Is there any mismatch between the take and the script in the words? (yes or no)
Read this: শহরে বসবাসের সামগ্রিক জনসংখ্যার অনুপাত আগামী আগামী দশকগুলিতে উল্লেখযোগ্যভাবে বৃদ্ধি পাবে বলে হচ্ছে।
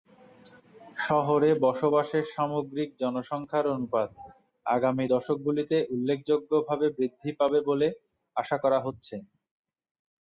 yes